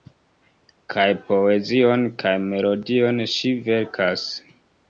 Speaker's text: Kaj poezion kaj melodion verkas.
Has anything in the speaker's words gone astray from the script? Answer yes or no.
yes